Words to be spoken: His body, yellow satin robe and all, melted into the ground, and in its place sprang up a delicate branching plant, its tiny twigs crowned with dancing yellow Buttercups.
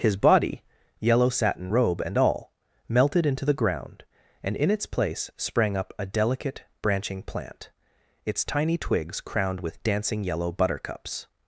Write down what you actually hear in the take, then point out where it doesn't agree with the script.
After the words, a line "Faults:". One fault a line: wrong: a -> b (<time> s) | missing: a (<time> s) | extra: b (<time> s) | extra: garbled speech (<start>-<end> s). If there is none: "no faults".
His body, yellow satin robe and all, melted into the ground, and in its place sprang up a delicate branching plant, its tiny twigs crowned with dancing yellow Buttercups.
Faults:
no faults